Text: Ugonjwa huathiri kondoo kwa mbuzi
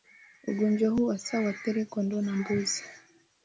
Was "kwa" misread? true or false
true